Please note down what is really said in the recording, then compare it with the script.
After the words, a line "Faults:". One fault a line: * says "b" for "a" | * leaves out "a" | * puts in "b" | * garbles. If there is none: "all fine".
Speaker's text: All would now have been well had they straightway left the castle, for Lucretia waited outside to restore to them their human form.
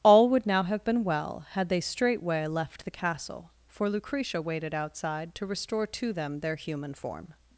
All would now have been well had they straightway left the castle, for Lucretia waited outside to restore to them their human form.
Faults:
all fine